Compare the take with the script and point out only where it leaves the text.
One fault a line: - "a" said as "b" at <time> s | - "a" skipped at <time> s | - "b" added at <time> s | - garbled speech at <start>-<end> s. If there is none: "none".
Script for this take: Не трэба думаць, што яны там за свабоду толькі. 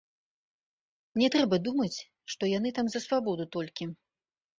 none